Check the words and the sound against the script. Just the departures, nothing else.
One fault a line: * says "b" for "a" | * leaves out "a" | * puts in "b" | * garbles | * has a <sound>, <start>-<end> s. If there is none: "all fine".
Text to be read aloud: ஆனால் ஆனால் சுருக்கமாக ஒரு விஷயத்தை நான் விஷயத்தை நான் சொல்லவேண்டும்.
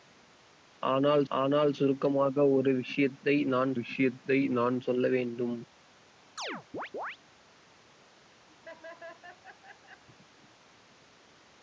* has a chirp, 6.4-7.2 s
* has a laugh, 8.5-10.0 s